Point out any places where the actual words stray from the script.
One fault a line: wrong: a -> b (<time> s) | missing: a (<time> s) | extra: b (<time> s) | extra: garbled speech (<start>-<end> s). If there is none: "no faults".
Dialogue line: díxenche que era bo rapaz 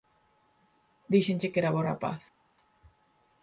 no faults